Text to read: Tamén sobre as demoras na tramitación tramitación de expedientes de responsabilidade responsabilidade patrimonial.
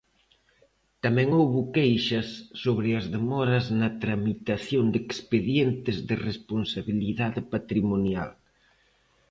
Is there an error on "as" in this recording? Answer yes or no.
no